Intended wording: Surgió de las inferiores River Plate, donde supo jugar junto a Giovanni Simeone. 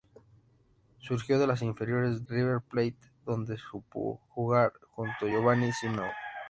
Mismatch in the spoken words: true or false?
false